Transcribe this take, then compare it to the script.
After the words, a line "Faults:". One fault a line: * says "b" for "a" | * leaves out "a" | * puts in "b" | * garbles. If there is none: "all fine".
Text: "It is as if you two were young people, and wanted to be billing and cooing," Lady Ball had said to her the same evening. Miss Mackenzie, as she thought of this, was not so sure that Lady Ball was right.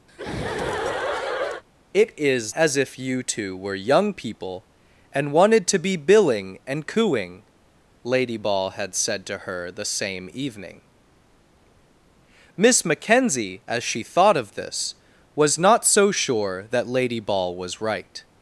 "It is as if you two were young people, and wanted to be billing and cooing," Lady Ball had said to her the same evening. Miss Mackenzie, as she thought of this, was not so sure that Lady Ball was right.
Faults:
all fine